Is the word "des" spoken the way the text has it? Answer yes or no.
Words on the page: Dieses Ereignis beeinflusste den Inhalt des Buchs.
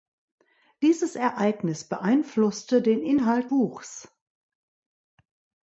no